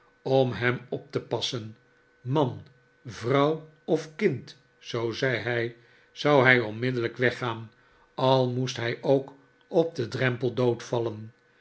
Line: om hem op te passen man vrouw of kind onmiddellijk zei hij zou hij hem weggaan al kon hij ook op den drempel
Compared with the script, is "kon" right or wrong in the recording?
wrong